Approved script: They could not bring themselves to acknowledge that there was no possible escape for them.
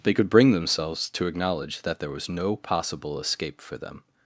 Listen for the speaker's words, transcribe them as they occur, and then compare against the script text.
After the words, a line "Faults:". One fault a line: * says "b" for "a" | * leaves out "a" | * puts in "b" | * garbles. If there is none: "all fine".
They could bring themselves to acknowledge that there was no possible escape for them.
Faults:
* leaves out "not"